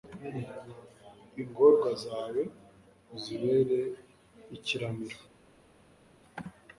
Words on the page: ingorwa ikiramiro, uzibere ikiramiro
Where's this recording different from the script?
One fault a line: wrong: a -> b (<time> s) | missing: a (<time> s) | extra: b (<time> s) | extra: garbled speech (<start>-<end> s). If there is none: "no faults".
wrong: ikiramiro -> zawe (2.0 s)